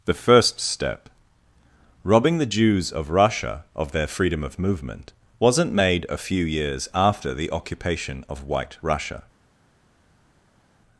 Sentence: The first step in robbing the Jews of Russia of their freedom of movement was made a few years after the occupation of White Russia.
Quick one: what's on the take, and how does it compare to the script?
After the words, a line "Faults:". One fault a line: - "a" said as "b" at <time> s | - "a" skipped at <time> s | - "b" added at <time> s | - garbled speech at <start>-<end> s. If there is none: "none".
The first step robbing the Jews of Russia of their freedom of movement wasn't made a few years after the occupation of White Russia.
Faults:
- "in" skipped at 1.1 s
- "was" said as "wasn't" at 5.4 s